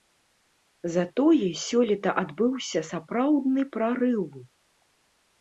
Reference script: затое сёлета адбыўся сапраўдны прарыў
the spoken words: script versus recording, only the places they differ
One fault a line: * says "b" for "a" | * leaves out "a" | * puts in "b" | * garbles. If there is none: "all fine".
all fine